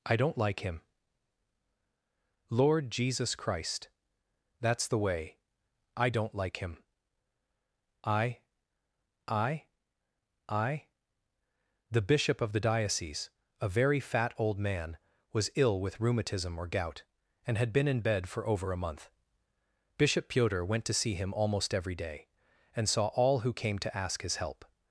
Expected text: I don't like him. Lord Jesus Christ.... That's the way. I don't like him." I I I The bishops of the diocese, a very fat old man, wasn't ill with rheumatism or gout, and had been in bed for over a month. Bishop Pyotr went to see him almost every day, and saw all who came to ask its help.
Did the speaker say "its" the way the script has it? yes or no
no